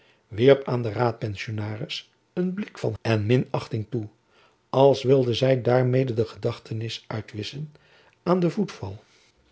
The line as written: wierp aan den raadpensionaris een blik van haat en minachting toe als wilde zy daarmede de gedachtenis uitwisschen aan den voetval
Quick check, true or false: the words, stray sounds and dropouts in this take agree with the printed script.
false